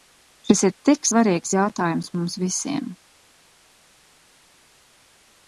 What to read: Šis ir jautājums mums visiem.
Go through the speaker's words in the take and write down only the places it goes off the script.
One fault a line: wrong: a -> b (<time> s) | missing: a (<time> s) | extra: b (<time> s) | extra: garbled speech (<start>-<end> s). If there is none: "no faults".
extra: tik svarīgs (0.9 s)